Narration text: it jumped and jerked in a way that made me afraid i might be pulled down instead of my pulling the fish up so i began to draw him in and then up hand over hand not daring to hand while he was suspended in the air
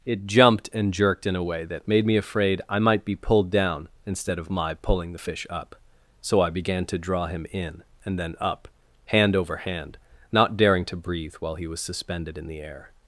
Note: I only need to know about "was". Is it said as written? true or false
true